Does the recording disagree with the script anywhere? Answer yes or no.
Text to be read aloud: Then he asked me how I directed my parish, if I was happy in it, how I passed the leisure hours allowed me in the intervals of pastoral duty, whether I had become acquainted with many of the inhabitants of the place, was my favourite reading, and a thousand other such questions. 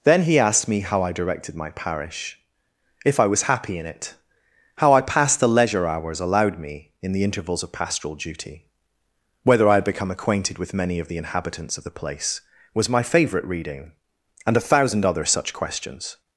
no